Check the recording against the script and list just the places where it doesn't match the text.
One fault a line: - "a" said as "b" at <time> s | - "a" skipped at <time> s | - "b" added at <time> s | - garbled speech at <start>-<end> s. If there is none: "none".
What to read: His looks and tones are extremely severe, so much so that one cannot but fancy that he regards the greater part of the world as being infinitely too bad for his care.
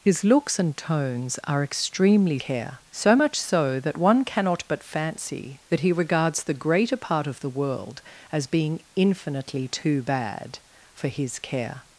- "severe" said as "care" at 2.4 s